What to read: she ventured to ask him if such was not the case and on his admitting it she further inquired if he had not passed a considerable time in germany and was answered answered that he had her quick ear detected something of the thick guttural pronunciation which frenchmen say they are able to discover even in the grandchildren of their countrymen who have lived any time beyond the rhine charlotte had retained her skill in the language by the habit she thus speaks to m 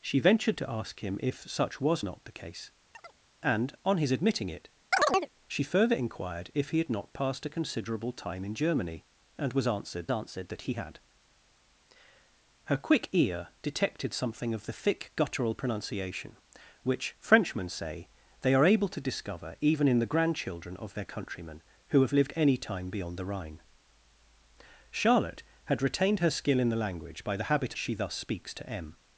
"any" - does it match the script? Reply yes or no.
yes